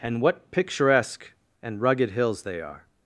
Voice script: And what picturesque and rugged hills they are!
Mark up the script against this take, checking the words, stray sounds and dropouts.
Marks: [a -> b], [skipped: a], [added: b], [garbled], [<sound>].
And what picturesque and rugged hills they are!